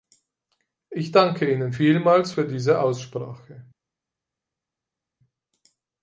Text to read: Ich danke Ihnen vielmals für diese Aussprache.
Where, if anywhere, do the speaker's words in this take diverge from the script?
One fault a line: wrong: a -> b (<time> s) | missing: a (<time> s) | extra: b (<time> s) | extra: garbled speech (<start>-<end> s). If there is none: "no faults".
no faults